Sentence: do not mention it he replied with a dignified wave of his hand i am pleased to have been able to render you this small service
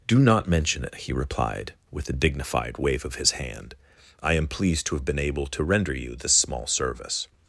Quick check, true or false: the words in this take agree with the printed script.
true